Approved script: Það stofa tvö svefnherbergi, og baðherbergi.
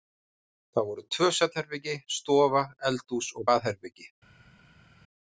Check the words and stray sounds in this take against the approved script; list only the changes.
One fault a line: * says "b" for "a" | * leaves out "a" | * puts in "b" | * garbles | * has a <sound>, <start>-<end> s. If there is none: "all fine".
* says "voru" for "stofa"
* puts in "stofa eldhús"